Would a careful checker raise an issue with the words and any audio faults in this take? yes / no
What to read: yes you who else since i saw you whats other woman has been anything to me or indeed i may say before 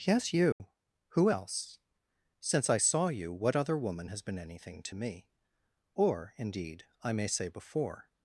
yes